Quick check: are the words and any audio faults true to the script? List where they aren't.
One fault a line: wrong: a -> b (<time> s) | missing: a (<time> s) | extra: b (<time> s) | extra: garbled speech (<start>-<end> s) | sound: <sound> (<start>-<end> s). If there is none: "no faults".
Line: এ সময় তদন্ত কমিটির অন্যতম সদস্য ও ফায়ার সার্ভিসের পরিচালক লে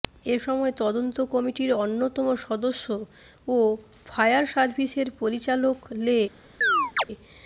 sound: chirp (6.6-7.0 s)